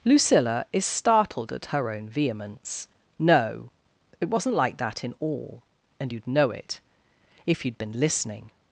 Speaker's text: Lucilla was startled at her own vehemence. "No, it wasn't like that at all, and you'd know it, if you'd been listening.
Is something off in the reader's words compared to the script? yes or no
yes